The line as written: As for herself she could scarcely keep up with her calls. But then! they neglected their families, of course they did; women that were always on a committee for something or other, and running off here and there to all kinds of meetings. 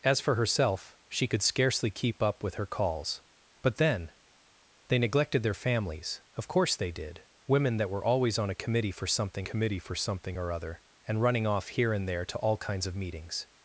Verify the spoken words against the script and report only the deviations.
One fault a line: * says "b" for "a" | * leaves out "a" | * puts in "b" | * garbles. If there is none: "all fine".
* puts in "committee for something"